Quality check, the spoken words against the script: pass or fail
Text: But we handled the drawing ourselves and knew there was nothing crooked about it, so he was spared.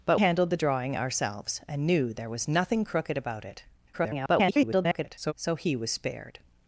fail